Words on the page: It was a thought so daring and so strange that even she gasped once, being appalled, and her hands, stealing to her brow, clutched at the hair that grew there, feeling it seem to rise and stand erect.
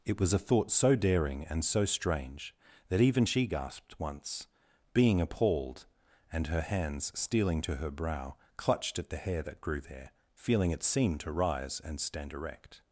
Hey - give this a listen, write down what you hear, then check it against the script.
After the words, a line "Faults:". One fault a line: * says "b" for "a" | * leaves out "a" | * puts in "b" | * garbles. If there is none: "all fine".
It was a thought so daring and so strange that even she gasped once, being appalled, and her hands, stealing to her brow, clutched at the hair that grew there, feeling it seem to rise and stand erect.
Faults:
all fine